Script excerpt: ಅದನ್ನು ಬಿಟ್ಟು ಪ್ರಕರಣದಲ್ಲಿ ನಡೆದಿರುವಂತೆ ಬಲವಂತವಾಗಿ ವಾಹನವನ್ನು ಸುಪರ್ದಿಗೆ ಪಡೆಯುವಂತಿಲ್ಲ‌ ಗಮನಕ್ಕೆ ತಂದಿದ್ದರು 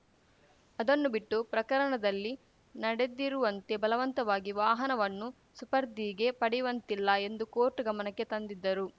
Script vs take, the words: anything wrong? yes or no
yes